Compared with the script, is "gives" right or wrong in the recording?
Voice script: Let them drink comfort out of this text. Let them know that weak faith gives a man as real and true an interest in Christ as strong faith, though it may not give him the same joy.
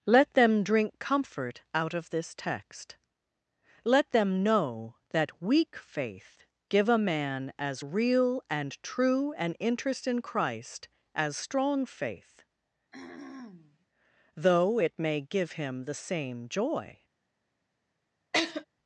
wrong